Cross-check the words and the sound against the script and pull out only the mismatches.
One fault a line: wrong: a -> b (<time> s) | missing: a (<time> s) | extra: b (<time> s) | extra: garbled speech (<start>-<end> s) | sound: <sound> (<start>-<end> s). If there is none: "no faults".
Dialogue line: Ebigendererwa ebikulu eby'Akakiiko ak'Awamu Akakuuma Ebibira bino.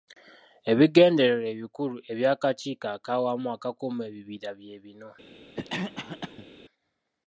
extra: bye (4.6 s)
sound: cough (5.6-6.5 s)